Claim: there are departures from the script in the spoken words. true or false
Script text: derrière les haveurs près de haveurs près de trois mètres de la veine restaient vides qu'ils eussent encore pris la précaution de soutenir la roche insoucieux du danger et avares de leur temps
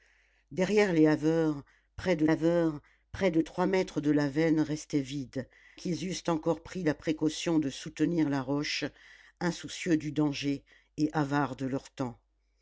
false